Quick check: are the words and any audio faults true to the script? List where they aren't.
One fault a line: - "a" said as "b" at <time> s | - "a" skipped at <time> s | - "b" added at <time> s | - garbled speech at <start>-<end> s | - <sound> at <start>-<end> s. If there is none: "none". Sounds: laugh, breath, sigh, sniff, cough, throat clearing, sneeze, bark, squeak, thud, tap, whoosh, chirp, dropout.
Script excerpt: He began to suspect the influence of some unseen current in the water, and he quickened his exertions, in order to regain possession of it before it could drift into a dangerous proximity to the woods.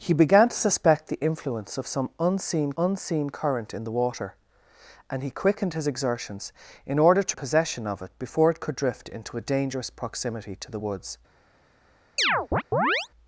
- "unseen" added at 2.8 s
- "regain" skipped at 7.4 s
- chirp at 12.2-13.1 s